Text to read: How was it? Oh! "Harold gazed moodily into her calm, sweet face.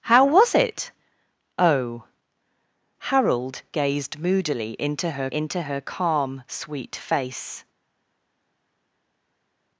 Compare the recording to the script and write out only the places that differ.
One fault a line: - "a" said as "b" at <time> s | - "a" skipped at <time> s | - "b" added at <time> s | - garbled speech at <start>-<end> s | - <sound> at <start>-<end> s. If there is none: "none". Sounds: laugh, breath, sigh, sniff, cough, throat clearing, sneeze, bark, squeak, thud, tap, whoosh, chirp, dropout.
- "into her" added at 5.3 s